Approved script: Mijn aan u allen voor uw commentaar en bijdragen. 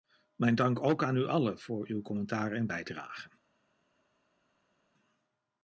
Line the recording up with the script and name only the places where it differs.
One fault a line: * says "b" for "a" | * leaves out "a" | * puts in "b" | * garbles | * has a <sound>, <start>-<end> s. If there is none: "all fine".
* puts in "dank ook"